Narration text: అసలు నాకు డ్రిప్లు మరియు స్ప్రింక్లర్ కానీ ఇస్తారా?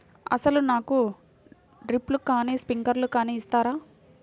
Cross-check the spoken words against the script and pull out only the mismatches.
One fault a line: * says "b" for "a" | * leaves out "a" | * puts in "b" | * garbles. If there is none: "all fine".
* says "కానీ" for "మరియు"